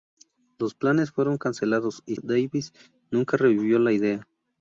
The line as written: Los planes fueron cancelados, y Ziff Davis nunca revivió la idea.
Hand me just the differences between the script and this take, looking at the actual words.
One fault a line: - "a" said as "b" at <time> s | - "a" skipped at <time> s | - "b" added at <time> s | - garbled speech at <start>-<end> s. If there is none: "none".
- "Ziff" skipped at 2.1 s